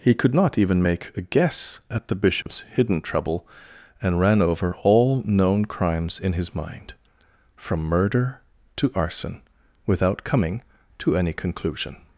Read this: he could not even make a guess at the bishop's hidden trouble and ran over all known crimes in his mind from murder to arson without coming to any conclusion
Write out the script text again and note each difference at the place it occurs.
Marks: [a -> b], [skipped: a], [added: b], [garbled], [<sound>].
he could not even make a guess at the bishop's [dropout] hidden trouble and ran over all known crimes in his mind from murder to arson without coming to any conclusion